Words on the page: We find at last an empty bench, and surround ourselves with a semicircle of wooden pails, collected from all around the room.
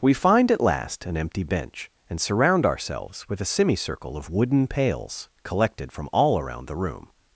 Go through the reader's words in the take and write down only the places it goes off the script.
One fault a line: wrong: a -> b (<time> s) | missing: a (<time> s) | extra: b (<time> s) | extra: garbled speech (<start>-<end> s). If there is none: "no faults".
no faults